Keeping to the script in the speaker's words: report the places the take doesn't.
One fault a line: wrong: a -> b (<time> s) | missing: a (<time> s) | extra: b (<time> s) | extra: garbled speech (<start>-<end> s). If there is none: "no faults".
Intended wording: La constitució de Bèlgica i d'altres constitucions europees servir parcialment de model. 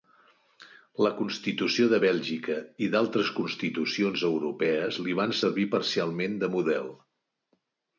extra: li van (5.1 s)